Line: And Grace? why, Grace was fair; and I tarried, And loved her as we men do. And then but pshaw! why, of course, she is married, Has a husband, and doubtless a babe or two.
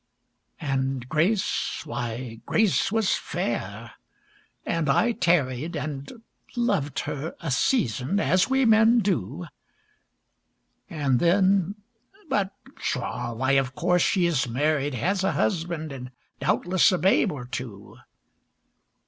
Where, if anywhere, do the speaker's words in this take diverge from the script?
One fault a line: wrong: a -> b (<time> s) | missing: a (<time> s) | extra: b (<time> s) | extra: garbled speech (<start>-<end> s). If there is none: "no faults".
extra: a season (7.4 s)